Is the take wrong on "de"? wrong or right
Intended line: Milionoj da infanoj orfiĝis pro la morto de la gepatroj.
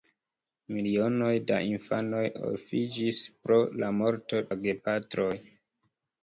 wrong